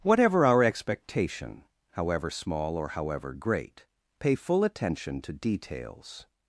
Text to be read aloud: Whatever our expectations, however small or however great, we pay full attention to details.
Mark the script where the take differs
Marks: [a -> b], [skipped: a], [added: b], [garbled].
Whatever our [expectations, -> expectation] however small or however great, [skipped: we] pay full attention to details.